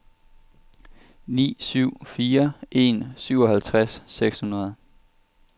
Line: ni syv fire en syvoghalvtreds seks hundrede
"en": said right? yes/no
yes